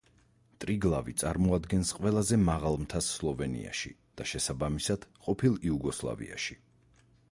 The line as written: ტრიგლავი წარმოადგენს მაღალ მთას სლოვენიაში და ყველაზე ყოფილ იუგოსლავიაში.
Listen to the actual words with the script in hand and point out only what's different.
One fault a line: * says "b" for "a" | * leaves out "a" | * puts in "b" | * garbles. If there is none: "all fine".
* puts in "ყველაზე"
* says "შესაბამისად" for "ყველაზე"